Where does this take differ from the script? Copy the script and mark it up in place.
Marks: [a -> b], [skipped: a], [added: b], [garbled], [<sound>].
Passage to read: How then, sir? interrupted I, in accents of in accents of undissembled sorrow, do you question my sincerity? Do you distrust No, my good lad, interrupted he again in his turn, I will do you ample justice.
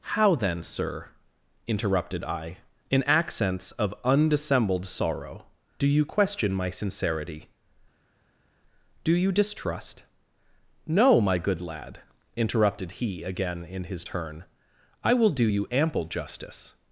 How then, sir? interrupted I, in accents of [skipped: in accents of] undissembled sorrow, do you question my sincerity? Do you distrust No, my good lad, interrupted he again in his turn, I will do you ample justice.